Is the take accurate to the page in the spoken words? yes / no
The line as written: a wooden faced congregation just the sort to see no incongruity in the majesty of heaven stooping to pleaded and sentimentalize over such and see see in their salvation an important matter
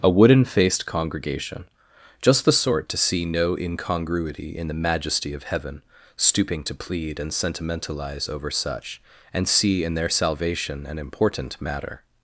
no